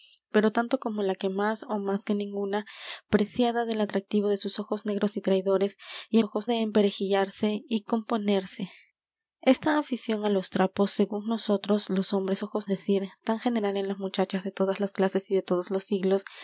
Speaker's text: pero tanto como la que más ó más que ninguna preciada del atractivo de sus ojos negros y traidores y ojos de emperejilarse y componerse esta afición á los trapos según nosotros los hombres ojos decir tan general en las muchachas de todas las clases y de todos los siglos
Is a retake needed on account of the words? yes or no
no